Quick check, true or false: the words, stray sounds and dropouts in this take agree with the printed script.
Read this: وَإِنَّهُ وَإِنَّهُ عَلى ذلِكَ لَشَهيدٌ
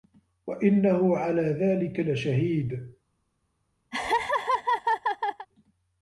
false